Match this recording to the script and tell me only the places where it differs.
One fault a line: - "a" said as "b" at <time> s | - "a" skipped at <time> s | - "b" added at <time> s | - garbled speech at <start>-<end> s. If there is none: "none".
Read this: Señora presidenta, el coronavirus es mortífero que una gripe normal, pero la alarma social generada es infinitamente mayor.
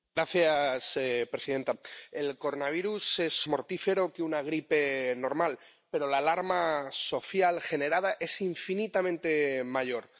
none